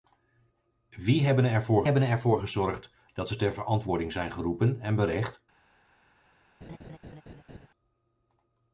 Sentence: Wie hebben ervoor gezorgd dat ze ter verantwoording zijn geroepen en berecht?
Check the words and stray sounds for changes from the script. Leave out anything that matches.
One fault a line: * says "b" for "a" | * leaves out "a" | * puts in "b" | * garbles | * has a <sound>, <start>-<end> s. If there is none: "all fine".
* puts in "hebben ervoor"
* has a laugh, 6.6-7.7 s